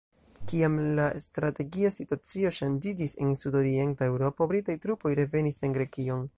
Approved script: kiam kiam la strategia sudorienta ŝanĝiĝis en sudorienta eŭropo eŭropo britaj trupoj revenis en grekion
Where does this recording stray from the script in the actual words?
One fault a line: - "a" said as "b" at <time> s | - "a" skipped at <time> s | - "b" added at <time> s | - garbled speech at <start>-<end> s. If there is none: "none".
- "kiam" skipped at 0.8 s
- "sudorienta" said as "situacio" at 2.0 s
- "eŭropo" skipped at 4.5 s